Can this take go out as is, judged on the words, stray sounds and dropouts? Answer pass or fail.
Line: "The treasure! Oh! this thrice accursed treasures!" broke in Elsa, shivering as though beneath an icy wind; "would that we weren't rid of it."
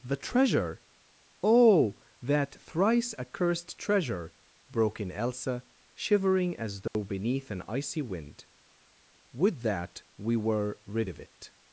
fail